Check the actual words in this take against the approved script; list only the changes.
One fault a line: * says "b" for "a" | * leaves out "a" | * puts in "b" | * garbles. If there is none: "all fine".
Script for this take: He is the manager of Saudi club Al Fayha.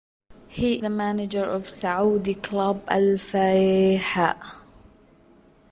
* leaves out "is"